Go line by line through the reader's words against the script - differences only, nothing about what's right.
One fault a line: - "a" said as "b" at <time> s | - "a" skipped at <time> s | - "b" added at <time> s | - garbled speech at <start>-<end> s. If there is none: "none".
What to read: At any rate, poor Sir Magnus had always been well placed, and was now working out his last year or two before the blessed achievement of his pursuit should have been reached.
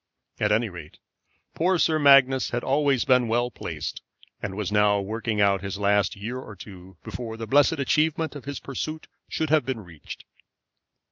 none